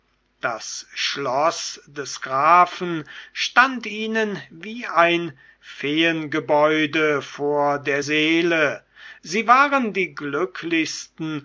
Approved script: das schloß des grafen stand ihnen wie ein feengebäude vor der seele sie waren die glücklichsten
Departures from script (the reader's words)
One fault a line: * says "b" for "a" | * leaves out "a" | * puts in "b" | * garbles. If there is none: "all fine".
all fine